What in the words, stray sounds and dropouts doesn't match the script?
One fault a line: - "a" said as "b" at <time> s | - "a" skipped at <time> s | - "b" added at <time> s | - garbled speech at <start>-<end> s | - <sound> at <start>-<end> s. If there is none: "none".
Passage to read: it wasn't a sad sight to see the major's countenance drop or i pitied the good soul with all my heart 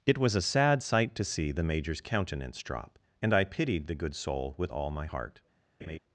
- "wasn't" said as "was" at 0.2 s
- "or" said as "and" at 3.2 s
- laugh at 5.8-6.0 s